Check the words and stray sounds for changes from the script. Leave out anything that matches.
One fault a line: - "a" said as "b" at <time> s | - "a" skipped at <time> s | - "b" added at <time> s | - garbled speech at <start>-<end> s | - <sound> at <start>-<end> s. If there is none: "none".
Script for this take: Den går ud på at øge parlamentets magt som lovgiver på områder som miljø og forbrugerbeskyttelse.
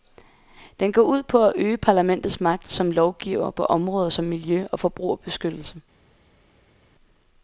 none